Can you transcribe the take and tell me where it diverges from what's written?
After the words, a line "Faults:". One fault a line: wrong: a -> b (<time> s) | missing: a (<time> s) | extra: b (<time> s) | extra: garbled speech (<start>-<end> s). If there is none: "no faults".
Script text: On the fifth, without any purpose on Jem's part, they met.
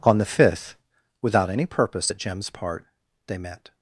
On the fifth, without any purpose at Jem's part, they met.
Faults:
wrong: on -> at (2.1 s)